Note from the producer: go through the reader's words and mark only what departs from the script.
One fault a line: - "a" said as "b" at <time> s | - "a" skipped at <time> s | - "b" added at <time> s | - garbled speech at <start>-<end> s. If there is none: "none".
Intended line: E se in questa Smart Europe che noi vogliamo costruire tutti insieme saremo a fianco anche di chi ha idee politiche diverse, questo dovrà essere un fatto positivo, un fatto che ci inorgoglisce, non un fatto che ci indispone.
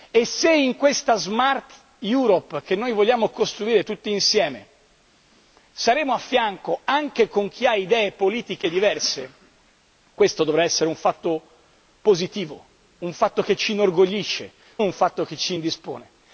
- "non" skipped at 14.5 s